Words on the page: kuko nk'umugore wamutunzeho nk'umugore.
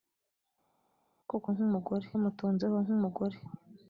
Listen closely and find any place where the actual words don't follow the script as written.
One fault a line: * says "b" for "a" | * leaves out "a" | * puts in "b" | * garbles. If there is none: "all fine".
all fine